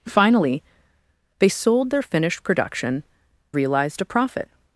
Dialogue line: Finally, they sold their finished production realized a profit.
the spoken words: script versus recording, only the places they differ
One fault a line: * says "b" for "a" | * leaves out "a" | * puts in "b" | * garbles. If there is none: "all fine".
all fine